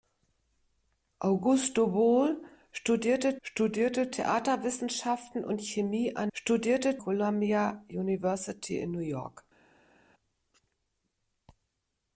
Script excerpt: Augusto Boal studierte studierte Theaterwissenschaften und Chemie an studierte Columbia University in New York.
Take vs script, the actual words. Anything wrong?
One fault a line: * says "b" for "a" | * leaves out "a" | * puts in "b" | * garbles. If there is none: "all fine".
all fine